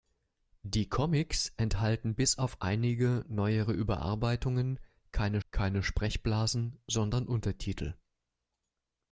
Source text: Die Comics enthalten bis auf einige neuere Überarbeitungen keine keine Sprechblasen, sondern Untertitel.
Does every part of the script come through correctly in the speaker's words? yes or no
yes